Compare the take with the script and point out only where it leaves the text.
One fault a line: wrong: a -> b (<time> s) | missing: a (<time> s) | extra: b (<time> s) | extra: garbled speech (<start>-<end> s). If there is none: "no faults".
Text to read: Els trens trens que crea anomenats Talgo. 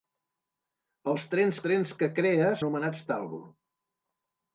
no faults